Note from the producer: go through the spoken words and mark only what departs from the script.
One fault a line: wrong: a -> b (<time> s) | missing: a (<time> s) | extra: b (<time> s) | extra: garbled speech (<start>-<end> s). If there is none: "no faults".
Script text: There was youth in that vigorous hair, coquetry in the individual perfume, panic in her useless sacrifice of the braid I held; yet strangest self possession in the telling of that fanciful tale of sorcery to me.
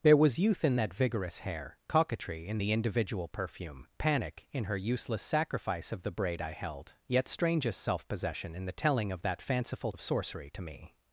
missing: tale (9.9 s)